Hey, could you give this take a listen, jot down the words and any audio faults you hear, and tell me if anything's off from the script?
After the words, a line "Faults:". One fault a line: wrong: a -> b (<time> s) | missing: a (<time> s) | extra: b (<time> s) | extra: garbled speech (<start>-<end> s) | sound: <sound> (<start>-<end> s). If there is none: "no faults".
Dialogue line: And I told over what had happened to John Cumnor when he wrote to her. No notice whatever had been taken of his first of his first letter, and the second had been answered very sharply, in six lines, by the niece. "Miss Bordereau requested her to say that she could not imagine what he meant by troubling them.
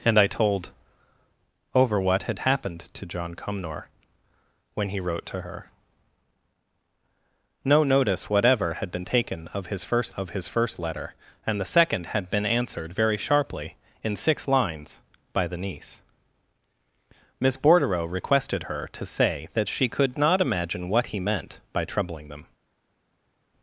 And I told over what had happened to John Cumnor when he wrote to her. No notice whatever had been taken of his first of his first letter, and the second had been answered very sharply, in six lines, by the niece. "Miss Bordereau requested her to say that she could not imagine what he meant by troubling them.
Faults:
no faults